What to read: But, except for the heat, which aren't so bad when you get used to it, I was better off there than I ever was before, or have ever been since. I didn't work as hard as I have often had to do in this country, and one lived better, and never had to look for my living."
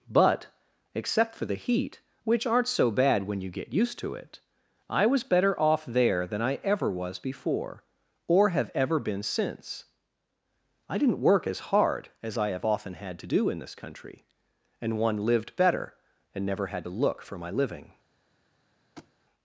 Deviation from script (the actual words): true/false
false